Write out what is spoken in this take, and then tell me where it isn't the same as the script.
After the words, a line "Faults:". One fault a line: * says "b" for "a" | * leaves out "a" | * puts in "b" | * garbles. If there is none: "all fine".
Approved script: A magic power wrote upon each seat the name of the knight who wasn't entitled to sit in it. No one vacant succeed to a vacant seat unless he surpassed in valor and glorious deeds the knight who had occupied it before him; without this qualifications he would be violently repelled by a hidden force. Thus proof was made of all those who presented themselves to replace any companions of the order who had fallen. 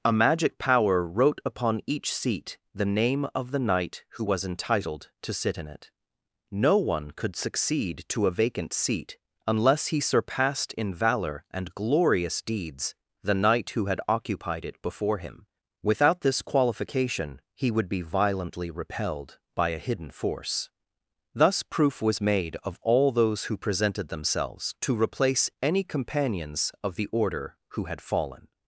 A magic power wrote upon each seat the name of the knight who was entitled to sit in it. No one could succeed to a vacant seat unless he surpassed in valor and glorious deeds the knight who had occupied it before him; without this qualification he would be violently repelled by a hidden force. Thus proof was made of all those who presented themselves to replace any companions of the order who had fallen.
Faults:
* says "was" for "wasn't"
* says "could" for "vacant"
* says "qualification" for "qualifications"